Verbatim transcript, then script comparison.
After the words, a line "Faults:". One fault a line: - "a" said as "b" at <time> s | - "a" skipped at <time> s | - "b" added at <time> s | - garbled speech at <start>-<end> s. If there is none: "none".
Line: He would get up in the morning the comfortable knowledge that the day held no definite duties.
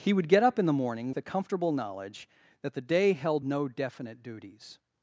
He would get up in the morning the comfortable knowledge that the day held no definite duties.
Faults:
none